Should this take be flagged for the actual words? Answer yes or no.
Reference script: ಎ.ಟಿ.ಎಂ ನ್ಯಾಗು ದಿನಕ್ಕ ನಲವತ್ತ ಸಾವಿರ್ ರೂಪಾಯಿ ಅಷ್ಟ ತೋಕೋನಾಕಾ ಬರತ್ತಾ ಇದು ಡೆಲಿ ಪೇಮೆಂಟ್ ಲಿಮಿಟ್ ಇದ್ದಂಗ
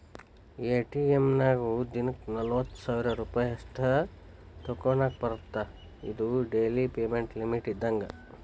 no